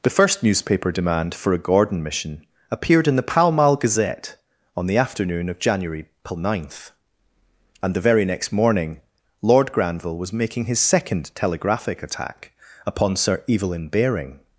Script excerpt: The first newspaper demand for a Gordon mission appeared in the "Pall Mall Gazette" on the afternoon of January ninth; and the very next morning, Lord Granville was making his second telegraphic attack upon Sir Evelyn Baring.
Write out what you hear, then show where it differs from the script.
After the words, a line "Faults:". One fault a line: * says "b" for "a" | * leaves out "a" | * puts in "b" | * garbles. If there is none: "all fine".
The first newspaper demand for a Gordon mission appeared in the "Pall Mall Gazette" on the afternoon of January ninth; and the very next morning, Lord Granville was making his second telegraphic attack upon Sir Evelyn Baring.
Faults:
all fine